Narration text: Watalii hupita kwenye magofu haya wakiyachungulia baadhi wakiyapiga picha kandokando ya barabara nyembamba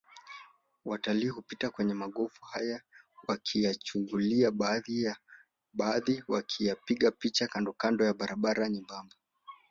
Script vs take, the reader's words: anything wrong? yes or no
no